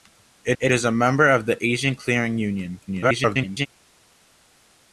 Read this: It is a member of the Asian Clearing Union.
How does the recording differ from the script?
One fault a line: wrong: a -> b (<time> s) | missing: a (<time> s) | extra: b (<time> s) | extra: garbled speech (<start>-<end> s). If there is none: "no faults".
extra: it (0.6 s)
extra: garbled speech (2.9-3.7 s)